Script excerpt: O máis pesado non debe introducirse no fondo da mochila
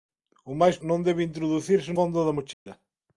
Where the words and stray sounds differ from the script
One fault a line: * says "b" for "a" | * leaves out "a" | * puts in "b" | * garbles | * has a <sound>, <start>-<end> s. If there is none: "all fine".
* leaves out "pesado"
* leaves out "no"
* has a dropout, 2.5-2.7 s